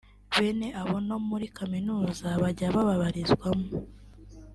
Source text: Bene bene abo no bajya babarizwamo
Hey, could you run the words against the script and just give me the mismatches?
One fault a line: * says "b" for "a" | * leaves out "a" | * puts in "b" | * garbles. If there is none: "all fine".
* leaves out "bene"
* puts in "muri kaminuza"